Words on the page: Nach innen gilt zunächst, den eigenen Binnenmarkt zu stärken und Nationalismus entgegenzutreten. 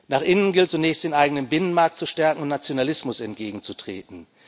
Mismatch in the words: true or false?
false